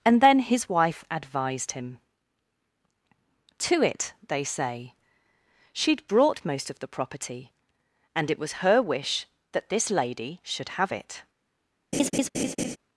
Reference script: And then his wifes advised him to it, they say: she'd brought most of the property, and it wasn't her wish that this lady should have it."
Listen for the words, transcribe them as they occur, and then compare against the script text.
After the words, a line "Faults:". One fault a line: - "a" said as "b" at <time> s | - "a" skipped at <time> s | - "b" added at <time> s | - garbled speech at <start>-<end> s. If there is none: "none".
And then his wife advised him to it, they say: she'd brought most of the property, and it was her wish that this lady should have it."
Faults:
- "wifes" said as "wife" at 0.7 s
- "wasn't" said as "was" at 8.4 s